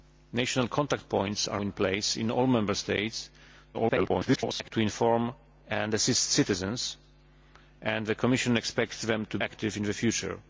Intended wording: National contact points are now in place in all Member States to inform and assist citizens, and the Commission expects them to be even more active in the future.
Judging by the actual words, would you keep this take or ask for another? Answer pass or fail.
fail